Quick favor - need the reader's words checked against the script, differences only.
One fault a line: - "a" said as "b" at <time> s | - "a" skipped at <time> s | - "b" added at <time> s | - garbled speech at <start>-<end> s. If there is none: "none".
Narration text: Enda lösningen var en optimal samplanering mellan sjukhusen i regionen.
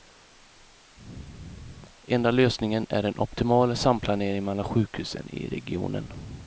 - "var" said as "är" at 2.9 s